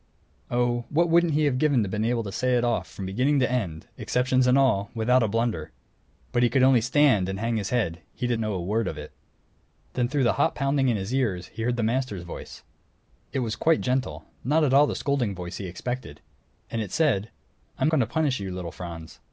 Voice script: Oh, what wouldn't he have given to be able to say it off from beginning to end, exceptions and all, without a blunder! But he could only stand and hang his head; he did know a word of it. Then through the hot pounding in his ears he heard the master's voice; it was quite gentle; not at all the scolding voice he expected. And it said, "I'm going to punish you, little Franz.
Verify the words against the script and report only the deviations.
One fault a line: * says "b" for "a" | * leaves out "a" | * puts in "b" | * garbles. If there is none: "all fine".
all fine